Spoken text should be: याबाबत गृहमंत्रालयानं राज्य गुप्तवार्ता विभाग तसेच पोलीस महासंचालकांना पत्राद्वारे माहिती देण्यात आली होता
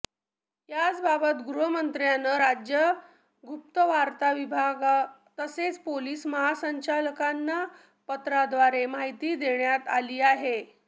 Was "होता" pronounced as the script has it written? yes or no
no